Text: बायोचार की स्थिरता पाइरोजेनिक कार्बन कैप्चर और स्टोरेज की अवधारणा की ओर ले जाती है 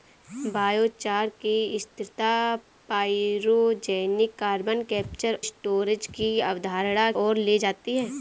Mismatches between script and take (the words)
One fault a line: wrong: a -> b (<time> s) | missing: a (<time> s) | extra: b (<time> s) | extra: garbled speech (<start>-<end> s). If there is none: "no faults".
missing: और (5.4 s)
missing: की (7.1 s)